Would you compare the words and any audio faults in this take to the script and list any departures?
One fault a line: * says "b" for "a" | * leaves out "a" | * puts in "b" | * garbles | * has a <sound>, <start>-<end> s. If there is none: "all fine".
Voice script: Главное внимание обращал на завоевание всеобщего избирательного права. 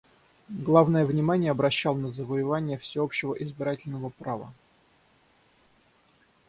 all fine